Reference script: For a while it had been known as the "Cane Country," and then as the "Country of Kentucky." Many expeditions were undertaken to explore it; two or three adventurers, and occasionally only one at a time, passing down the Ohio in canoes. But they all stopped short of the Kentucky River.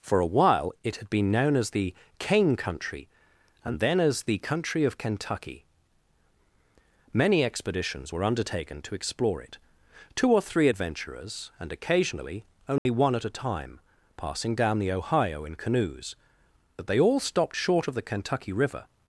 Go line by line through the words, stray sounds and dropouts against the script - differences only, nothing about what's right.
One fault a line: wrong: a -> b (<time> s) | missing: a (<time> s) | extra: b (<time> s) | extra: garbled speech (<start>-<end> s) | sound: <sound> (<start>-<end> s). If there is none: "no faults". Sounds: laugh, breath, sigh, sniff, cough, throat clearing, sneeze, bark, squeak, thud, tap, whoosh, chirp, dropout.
sound: dropout (12.8-12.9 s)